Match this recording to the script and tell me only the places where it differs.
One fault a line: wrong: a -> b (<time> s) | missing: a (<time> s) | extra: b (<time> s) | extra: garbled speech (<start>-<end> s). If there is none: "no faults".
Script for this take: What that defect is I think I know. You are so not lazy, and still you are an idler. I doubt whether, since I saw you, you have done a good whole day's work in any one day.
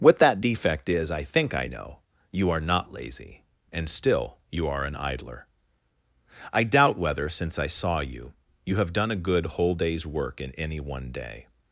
missing: so (2.6 s)